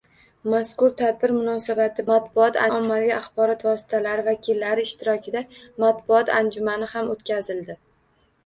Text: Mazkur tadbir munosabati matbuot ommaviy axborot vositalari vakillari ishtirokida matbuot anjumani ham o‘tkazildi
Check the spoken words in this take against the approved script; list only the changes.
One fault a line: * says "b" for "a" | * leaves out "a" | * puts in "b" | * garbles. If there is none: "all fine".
all fine